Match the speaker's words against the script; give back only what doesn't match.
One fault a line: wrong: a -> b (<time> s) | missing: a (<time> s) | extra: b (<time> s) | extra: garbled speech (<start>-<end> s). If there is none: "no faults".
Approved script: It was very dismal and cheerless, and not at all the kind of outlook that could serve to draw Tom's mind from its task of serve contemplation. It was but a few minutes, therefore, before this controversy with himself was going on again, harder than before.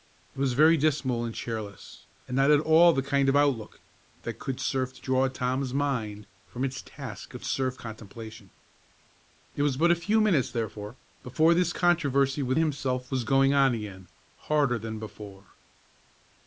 no faults